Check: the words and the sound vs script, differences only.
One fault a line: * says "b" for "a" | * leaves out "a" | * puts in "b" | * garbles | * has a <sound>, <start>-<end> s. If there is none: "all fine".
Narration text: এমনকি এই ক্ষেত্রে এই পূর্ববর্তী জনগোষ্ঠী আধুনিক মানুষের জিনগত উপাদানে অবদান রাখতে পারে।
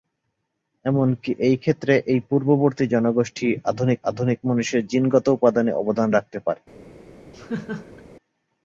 * puts in "আধুনিক"
* has a laugh, 7.3-8.0 s